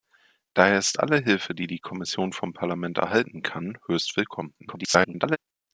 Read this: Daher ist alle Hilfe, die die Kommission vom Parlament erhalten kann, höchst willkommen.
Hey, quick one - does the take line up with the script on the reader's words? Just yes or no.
no